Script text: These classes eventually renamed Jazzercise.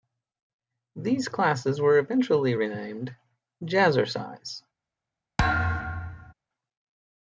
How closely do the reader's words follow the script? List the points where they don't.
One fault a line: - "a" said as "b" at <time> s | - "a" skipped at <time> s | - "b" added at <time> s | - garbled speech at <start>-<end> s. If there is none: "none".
- "were" added at 1.8 s